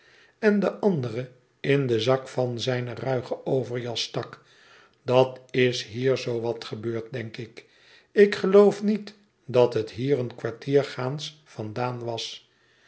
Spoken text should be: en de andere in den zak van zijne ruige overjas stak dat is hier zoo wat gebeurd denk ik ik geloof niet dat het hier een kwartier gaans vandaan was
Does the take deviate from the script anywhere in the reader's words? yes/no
no